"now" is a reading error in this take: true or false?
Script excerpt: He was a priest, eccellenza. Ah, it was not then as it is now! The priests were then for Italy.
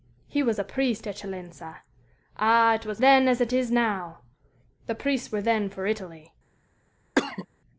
false